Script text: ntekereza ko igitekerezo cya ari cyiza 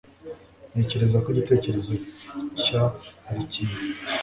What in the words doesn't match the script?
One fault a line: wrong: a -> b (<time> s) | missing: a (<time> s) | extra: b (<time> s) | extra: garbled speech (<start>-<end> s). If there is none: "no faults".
no faults